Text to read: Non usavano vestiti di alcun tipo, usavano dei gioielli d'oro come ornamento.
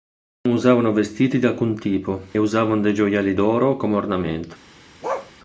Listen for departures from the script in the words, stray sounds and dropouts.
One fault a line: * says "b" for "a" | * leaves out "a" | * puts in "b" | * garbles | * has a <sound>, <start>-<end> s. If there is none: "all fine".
* has a bark, 5.0-5.3 s